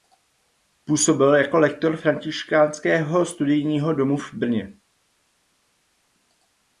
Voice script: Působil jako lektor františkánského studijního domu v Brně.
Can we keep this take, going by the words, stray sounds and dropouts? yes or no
yes